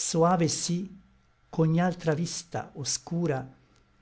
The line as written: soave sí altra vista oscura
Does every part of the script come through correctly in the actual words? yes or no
no